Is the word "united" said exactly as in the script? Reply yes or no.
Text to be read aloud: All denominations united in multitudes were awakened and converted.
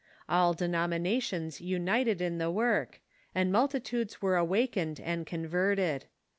yes